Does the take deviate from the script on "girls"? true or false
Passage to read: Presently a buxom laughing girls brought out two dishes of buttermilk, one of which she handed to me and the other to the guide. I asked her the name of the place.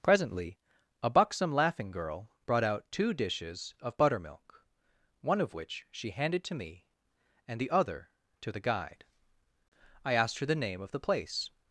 true